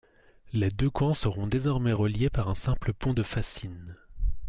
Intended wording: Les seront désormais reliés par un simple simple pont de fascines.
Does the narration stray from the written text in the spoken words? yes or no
yes